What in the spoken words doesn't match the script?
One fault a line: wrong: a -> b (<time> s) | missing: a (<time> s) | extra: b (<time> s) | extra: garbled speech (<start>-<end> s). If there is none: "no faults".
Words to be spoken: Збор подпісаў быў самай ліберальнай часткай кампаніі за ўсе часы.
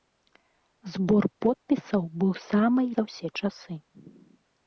missing: ліберальнай часткай кампаніі (2.9 s)